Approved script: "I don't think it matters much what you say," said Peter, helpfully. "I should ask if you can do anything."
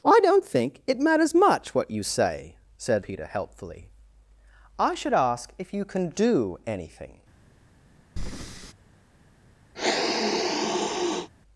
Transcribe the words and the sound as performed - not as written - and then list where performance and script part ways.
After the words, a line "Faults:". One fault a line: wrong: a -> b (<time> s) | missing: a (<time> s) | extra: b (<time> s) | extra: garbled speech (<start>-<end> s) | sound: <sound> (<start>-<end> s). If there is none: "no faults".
"I don't think it matters much what you say," said Peter, helpfully. "I should ask if you can do anything."
Faults:
sound: breath (8.2-8.7 s)
sound: sniff (9.7-11.3 s)